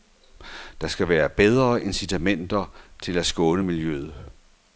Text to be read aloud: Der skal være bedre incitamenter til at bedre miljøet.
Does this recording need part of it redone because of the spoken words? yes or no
yes